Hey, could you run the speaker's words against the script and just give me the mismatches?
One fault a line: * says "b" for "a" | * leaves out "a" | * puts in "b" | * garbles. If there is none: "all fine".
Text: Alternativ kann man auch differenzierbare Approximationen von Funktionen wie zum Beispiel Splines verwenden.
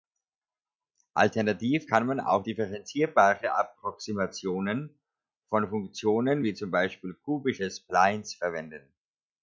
* puts in "kubische"